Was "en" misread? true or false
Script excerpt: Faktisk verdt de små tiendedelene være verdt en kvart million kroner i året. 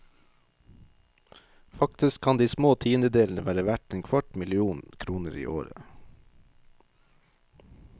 false